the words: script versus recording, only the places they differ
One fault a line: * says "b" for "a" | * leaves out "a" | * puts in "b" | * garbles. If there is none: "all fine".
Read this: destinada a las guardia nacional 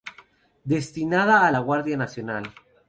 * says "la" for "las"